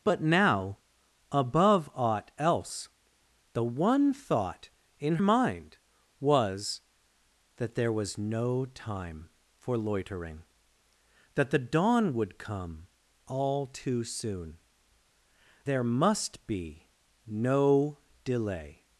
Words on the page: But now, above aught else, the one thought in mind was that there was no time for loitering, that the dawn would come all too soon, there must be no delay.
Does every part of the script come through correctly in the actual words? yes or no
yes